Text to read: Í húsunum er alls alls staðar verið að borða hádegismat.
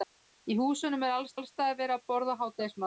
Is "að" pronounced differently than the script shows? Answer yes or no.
no